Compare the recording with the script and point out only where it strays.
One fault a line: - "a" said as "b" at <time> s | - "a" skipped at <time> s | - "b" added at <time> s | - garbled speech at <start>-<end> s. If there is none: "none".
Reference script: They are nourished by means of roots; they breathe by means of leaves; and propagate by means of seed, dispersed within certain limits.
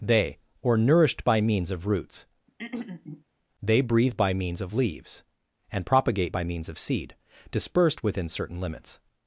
- "are" said as "or" at 0.6 s